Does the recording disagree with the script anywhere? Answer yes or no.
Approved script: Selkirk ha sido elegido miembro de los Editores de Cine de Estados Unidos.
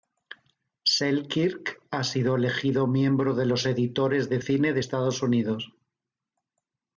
no